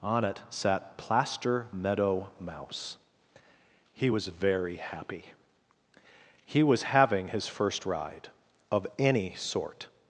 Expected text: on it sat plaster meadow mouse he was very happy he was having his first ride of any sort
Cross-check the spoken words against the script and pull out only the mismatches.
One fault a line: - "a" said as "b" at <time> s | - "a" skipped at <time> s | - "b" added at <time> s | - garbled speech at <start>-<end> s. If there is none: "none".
none